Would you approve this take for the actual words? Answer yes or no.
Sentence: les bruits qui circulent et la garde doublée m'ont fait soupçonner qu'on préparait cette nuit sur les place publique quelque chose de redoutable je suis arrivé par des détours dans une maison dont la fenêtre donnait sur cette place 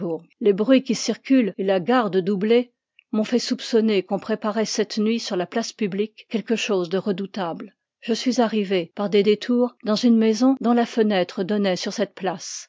no